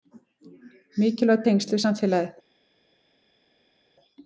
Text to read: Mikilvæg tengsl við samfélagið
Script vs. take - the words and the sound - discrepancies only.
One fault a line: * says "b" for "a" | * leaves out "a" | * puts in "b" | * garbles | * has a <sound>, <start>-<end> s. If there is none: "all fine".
all fine